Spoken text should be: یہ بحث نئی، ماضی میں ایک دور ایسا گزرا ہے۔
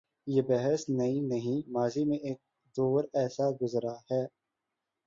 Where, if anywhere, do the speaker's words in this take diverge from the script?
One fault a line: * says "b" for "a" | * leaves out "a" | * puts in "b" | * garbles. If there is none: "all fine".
* puts in "نہیں"